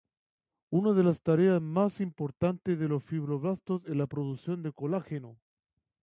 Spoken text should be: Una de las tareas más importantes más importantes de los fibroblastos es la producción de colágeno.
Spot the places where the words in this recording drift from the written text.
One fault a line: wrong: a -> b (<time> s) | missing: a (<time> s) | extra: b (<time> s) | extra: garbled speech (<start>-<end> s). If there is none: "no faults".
missing: más importantes (2.8 s)